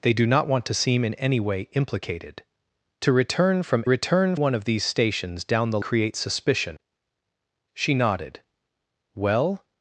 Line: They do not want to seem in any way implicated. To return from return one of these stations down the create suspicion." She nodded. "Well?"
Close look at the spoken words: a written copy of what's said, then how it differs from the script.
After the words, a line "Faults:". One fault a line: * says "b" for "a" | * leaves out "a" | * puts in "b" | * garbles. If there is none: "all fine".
They do not want to seem in any way implicated. To return from return one of these stations down the create suspicion." She nodded. "Well?"
Faults:
all fine